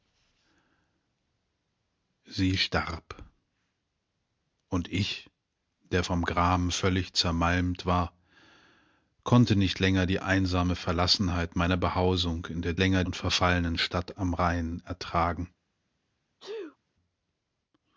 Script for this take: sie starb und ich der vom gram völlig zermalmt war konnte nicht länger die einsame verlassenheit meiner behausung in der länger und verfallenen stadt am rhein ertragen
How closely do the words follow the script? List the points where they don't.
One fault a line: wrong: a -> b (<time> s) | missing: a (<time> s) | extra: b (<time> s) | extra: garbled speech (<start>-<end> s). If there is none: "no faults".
no faults